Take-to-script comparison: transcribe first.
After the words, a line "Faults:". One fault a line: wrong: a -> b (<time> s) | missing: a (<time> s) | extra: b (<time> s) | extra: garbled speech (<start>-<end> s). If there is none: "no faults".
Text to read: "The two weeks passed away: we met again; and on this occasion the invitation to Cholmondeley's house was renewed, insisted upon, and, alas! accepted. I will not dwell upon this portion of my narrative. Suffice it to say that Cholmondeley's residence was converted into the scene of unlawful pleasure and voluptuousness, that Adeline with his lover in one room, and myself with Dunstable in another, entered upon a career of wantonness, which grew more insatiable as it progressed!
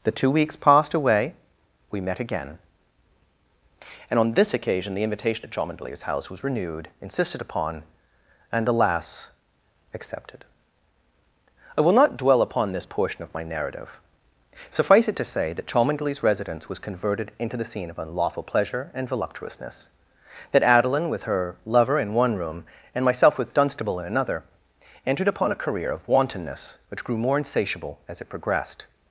"The two weeks passed away: we met again; and on this occasion the invitation to Cholmondeley's house was renewed, insisted upon, and, alas! accepted. I will not dwell upon this portion of my narrative. Suffice it to say that Cholmondeley's residence was converted into the scene of unlawful pleasure and voluptuousness, that Adeline with her lover in one room, and myself with Dunstable in another, entered upon a career of wantonness, which grew more insatiable as it progressed!
Faults:
wrong: his -> her (21.2 s)